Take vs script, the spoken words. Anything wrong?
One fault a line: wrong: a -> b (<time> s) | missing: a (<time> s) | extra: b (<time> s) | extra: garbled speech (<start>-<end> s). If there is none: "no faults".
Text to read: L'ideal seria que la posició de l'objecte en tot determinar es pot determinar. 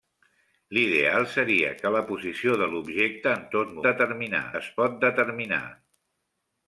no faults